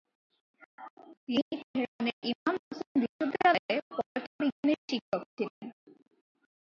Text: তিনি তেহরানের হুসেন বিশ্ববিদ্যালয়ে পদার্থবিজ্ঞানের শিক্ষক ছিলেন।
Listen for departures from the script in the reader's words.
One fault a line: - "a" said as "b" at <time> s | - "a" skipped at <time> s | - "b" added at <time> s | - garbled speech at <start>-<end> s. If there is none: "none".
- "ইমাম" added at 2.3 s